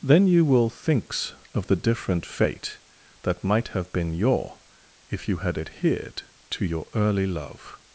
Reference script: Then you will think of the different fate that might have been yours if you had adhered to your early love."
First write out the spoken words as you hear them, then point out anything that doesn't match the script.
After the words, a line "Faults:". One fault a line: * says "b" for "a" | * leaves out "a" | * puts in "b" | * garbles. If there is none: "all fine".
Then you will thinks of the different fate that might have been your if you had adhered to your early love."
Faults:
* says "thinks" for "think"
* says "your" for "yours"